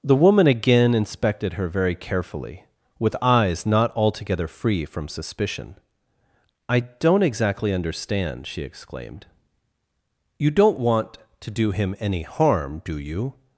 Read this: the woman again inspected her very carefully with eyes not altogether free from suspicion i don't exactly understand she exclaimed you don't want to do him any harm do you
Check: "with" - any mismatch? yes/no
no